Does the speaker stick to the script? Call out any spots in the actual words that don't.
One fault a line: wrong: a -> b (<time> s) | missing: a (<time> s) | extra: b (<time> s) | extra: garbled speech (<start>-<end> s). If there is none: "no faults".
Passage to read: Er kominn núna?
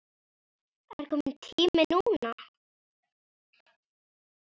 extra: tími (1.4 s)